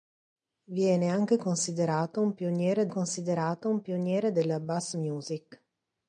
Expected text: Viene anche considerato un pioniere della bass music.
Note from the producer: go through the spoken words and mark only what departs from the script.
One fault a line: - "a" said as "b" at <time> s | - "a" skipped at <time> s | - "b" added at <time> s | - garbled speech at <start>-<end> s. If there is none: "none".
- "considerato un pioniere" added at 2.9 s